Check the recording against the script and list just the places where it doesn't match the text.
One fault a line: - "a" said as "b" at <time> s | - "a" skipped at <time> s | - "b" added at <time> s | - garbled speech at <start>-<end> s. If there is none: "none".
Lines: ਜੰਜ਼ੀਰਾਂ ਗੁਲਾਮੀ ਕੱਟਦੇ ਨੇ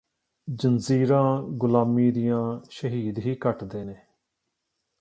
- "ਦੀਆਂ ਸ਼ਹੀਦ ਹੀ" added at 2.1 s